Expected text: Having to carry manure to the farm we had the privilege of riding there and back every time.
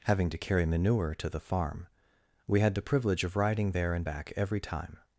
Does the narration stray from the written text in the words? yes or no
no